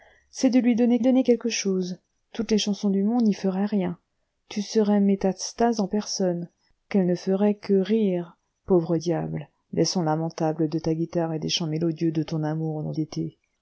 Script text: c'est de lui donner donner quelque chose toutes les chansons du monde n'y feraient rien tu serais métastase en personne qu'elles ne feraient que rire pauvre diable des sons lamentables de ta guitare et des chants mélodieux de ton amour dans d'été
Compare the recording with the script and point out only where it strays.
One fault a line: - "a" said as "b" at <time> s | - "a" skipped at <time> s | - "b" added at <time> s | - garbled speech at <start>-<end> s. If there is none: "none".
none